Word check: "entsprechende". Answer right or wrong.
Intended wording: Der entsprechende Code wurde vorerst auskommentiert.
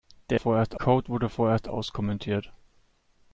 wrong